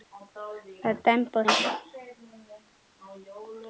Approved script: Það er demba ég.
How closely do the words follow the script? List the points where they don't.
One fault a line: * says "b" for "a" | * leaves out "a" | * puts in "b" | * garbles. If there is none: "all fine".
all fine